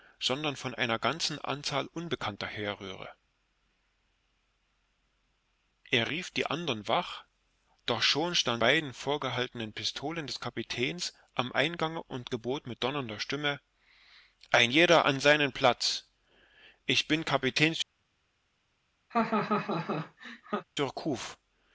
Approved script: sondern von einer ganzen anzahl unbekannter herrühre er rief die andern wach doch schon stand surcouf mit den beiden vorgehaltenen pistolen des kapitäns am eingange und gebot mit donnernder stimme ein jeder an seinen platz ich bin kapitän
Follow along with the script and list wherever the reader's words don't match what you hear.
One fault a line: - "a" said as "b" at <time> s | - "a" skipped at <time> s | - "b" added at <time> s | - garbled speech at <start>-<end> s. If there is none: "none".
- "surcouf mit den" skipped at 8.6 s